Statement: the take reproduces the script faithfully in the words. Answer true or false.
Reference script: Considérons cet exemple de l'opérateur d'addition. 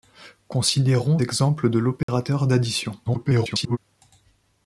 false